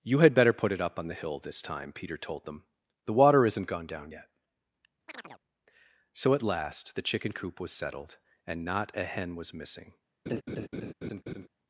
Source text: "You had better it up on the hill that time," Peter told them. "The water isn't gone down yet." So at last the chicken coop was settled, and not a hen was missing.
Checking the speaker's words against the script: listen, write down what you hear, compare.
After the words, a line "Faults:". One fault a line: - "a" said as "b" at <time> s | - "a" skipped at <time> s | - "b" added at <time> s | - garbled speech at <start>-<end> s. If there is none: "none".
"You had better put it up on the hill this time," Peter told them. "The water isn't gone down yet." So at last the chicken coop was settled, and not a hen was missing.
Faults:
- "put" added at 0.5 s
- "that" said as "this" at 1.4 s